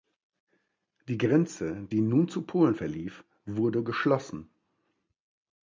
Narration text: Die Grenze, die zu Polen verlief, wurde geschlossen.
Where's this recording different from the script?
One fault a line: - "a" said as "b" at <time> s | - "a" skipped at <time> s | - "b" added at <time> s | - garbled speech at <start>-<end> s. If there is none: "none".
- "nun" added at 2.0 s